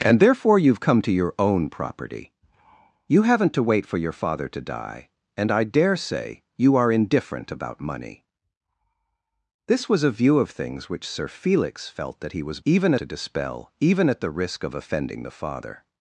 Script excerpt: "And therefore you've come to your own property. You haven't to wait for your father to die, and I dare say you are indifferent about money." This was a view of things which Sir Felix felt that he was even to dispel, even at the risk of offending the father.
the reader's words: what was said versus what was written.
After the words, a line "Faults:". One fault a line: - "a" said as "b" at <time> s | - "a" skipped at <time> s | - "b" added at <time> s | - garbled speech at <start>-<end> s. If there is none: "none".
"And therefore you've come to your own property. You haven't to wait for your father to die, and I dare say you are indifferent about money." This was a view of things which Sir Felix felt that he was even to dispel, even at the risk of offending the father.
Faults:
none